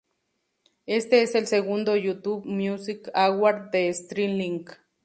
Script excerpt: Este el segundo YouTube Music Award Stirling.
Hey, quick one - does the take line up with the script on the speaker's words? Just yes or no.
no